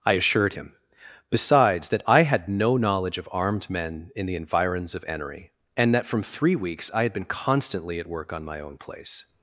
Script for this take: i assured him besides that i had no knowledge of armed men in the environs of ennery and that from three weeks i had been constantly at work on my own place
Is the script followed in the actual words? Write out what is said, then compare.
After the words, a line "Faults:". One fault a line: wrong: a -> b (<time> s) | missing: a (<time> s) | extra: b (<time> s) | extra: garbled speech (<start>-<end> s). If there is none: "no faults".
i assured him besides that i had no knowledge of armed men in the environs of ennery and that from three weeks i had been constantly at work on my own place
Faults:
no faults